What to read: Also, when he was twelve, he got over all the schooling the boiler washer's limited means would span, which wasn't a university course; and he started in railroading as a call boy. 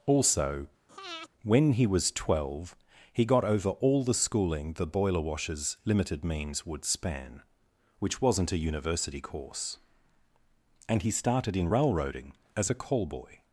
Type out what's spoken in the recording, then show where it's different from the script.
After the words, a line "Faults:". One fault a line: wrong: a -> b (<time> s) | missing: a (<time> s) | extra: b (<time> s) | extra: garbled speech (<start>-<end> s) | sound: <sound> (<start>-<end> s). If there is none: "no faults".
Also, when he was twelve, he got over all the schooling the boiler washer's limited means would span, which wasn't a university course; and he started in railroading as a call boy.
Faults:
sound: breath (0.9-1.3 s)